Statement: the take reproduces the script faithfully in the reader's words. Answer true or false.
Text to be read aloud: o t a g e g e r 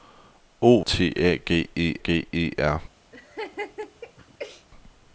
true